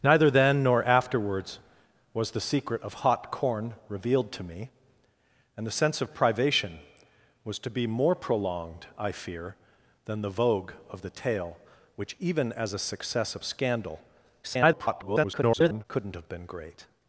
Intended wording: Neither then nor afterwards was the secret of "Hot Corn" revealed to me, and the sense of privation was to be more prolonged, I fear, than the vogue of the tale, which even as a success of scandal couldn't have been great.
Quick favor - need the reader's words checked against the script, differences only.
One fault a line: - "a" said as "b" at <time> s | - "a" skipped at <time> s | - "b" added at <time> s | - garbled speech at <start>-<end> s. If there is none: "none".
- garbled speech at 14.4-15.8 s